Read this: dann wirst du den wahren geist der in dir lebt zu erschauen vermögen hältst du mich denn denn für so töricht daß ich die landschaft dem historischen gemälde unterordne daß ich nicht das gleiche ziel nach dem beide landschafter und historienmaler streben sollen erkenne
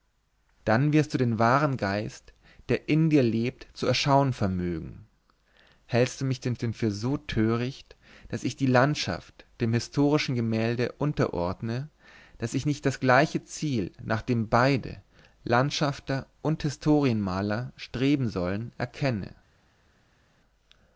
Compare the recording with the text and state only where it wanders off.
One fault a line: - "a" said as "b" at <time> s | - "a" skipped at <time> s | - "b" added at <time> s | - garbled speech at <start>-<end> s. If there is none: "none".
none